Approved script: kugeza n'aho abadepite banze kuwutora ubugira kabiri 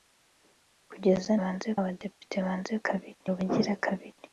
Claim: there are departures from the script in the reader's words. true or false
true